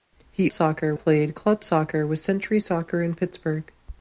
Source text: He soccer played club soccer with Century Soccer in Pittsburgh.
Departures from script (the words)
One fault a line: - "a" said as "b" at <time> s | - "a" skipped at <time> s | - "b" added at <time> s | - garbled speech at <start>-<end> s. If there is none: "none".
none